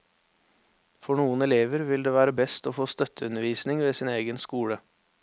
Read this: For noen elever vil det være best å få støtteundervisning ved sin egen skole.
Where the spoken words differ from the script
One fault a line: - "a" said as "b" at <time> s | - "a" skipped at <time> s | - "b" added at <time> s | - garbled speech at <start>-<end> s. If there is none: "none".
none